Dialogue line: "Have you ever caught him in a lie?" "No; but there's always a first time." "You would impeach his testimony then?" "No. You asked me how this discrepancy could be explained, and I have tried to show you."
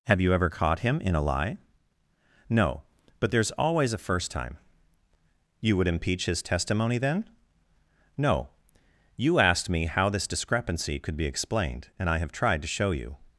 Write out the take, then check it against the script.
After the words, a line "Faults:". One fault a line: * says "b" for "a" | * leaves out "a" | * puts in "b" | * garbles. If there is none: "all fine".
"Have you ever caught him in a lie?" "No; but there's always a first time." "You would impeach his testimony then?" "No. You asked me how this discrepancy could be explained, and I have tried to show you."
Faults:
all fine